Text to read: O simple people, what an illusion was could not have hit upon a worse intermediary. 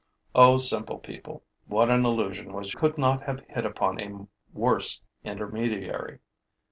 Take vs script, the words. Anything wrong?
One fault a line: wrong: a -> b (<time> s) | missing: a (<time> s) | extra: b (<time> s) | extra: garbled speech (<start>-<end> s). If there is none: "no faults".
no faults